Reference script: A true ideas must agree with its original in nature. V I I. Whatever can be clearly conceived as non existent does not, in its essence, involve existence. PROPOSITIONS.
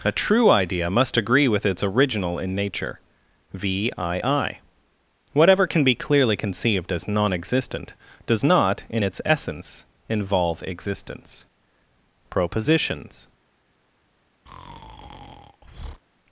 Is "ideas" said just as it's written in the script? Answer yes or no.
no